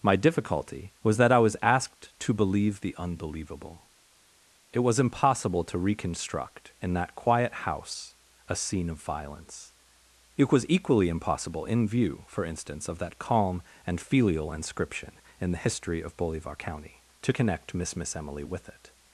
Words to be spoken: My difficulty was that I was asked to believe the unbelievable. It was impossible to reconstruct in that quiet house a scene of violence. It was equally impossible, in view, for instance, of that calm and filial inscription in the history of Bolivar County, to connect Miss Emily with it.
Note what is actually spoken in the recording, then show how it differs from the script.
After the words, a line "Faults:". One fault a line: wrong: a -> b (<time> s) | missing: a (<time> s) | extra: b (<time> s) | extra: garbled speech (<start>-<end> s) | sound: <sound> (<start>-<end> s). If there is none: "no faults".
My difficulty was that I was asked to believe the unbelievable. It was impossible to reconstruct in that quiet house a scene of violence. It was equally impossible, in view, for instance, of that calm and filial inscription in the history of Bolivar County, to connect Miss Miss Emily with it.
Faults:
extra: Miss (18.0 s)